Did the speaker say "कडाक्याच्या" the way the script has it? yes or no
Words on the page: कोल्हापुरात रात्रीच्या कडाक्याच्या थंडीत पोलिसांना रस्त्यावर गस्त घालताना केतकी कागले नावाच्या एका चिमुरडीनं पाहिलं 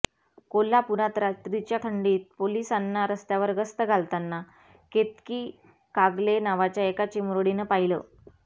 no